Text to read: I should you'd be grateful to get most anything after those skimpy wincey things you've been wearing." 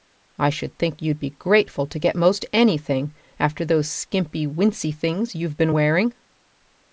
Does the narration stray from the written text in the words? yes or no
yes